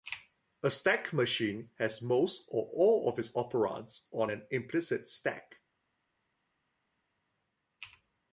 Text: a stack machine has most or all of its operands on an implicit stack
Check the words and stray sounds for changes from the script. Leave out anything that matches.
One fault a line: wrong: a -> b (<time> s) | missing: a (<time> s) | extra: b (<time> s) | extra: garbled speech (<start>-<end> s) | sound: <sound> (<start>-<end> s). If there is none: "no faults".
no faults